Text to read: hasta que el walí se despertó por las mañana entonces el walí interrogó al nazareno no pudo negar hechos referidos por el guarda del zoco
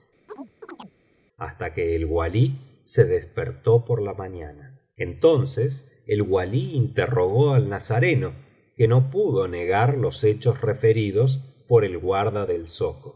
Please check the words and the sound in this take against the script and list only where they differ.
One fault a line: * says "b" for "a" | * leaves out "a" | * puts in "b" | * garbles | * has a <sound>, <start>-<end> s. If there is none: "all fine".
* has a chirp, 0.3-0.9 s
* says "la" for "las"
* puts in "que"
* puts in "los"